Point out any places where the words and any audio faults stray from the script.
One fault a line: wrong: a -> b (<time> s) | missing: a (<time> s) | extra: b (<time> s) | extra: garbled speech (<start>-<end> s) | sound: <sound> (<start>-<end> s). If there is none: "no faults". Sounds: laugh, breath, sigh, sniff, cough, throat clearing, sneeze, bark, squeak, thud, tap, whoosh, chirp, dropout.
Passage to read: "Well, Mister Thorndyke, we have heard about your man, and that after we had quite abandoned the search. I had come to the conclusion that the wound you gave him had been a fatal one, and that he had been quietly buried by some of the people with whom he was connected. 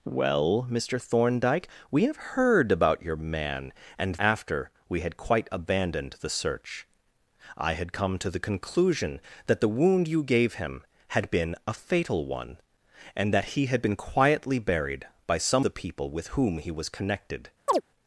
missing: that (4.2 s)
missing: of (15.7 s)
sound: chirp (17.7-17.8 s)